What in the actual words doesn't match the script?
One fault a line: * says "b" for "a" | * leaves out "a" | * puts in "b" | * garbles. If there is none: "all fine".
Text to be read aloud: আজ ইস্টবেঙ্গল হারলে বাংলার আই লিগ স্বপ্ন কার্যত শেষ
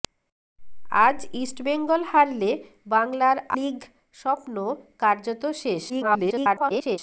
* leaves out "আই"
* garbles